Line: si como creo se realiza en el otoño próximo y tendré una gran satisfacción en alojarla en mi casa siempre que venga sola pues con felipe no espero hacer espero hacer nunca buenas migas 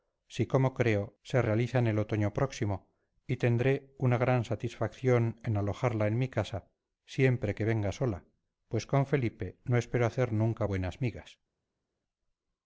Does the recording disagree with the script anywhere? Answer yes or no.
yes